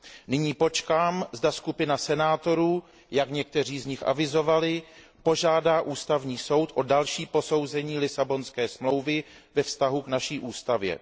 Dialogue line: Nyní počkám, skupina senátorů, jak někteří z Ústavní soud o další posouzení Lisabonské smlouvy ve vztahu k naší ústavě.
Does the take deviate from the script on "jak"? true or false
false